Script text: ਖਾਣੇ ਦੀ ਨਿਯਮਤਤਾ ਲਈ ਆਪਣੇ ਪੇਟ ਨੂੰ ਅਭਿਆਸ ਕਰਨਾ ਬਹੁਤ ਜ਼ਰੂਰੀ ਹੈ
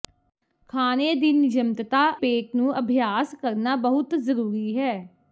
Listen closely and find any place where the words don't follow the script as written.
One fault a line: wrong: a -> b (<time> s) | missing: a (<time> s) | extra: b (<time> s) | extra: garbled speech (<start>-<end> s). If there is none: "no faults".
missing: ਲਈ ਆਪਣੇ (2.0 s)